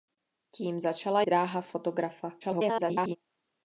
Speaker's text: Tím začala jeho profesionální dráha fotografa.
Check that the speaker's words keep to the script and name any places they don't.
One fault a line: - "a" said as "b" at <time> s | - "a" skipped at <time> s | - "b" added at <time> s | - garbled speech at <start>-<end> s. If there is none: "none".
- "jeho profesionální" skipped at 1.2 s
- garbled speech at 2.4-3.2 s